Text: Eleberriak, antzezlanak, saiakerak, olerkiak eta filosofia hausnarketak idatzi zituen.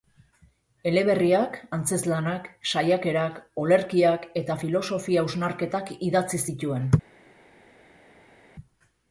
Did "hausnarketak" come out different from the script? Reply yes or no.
no